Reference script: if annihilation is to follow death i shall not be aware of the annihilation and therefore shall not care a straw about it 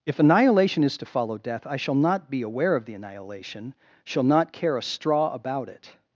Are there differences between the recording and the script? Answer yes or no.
yes